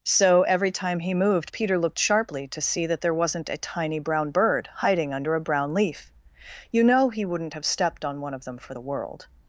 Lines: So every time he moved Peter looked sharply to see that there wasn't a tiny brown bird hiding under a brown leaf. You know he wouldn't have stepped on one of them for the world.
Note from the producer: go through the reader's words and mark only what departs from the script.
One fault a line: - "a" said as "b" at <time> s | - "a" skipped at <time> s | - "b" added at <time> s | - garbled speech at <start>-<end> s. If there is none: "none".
none